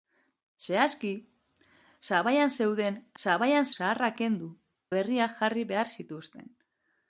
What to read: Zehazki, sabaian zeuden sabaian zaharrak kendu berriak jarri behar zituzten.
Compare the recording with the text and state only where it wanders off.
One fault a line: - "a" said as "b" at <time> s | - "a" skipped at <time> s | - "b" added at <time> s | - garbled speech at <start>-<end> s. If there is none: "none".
none